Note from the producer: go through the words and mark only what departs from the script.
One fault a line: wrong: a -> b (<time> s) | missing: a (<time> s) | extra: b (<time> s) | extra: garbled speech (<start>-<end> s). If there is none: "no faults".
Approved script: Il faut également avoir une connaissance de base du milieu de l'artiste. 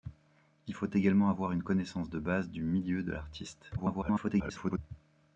extra: garbled speech (3.8-4.8 s)